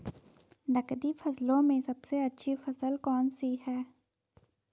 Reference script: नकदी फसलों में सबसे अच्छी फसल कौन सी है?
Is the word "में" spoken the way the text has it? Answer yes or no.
yes